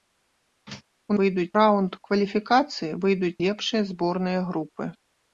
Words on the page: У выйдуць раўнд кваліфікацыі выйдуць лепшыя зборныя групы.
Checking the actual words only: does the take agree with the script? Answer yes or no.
yes